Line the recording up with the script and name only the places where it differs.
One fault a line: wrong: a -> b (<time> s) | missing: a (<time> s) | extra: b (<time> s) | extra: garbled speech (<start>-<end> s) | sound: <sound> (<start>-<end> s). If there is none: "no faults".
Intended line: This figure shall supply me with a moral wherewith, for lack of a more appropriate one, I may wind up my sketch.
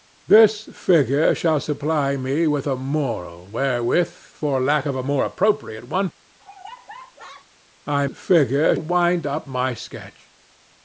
sound: laugh (6.4-7.5 s)
wrong: may -> figure (8.1 s)